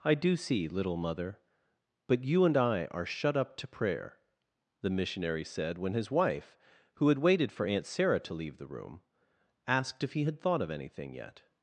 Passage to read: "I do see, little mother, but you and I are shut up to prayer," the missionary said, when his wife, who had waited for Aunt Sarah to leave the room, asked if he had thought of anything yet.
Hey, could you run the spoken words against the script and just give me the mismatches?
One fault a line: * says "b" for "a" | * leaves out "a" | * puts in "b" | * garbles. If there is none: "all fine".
all fine